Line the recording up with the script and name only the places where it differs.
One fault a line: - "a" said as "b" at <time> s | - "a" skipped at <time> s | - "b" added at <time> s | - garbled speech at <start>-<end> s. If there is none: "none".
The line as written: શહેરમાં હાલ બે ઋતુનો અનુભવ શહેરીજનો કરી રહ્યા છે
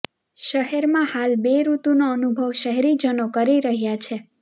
none